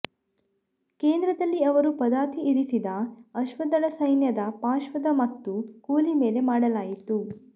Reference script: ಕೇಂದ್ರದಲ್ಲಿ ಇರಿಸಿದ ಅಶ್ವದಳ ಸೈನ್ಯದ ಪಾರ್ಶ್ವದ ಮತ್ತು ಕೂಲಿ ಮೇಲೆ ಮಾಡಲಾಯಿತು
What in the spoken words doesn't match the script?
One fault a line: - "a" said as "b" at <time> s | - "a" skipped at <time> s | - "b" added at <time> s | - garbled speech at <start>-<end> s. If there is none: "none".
- "ಅವರು ಪದಾತಿ" added at 1.6 s